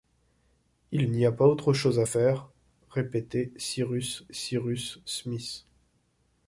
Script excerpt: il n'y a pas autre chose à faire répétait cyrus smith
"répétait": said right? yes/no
yes